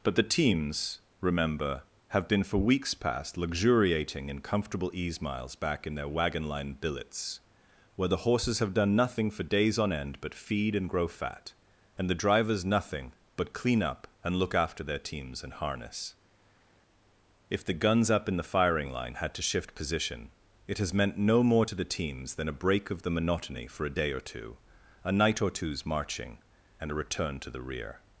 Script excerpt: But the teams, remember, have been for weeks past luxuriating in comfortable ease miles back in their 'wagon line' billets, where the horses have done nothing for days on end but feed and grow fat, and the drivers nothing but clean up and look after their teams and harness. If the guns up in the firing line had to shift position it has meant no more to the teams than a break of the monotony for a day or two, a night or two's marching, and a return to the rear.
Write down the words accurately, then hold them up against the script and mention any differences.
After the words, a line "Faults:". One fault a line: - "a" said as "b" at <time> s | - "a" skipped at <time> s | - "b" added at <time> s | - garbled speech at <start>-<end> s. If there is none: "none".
But the teams, remember, have been for weeks past luxuriating in comfortable ease miles back in their 'wagon line' billets, where the horses have done nothing for days on end but feed and grow fat, and the drivers nothing but clean up and look after their teams and harness. If the guns up in the firing line had to shift position it has meant no more to the teams than a break of the monotony for a day or two, a night or two's marching, and a return to the rear.
Faults:
none